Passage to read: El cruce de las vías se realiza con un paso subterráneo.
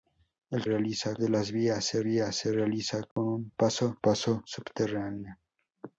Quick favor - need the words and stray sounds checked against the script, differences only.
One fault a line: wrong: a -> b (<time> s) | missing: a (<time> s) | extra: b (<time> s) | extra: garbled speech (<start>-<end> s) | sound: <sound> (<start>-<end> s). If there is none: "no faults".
wrong: cruce -> realiza (0.6 s)
extra: vías se (2.0 s)
sound: dropout (3.1-3.2 s)
extra: paso (4.0 s)